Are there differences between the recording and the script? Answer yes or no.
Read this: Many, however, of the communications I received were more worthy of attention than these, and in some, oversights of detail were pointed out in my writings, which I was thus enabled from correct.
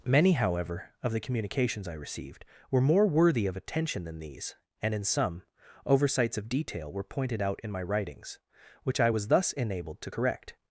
yes